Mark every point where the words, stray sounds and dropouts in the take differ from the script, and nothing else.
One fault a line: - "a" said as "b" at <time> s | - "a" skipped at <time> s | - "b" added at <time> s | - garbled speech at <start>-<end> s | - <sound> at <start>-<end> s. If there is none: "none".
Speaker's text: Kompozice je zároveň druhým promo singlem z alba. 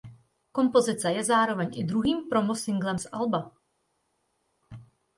- "i" added at 1.7 s